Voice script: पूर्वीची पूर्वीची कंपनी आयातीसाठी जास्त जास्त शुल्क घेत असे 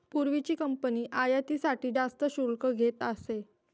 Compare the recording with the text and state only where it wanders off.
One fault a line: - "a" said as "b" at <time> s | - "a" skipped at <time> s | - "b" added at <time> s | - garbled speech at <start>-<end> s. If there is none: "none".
- "पूर्वीची" skipped at 0.6 s
- "जास्त" skipped at 2.2 s